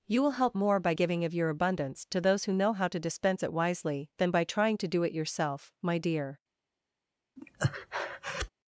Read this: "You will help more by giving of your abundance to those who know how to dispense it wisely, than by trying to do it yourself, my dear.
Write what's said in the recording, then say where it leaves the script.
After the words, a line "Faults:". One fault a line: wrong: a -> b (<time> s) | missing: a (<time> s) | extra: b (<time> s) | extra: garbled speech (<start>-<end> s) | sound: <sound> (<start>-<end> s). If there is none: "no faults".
"You will help more by giving of your abundance to those who know how to dispense it wisely, than by trying to do it yourself, my dear.
Faults:
sound: breath (7.4-8.5 s)